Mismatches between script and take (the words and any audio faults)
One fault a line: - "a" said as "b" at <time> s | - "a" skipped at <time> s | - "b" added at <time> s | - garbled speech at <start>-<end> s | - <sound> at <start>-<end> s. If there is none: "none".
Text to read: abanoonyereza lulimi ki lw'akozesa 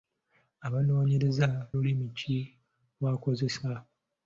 none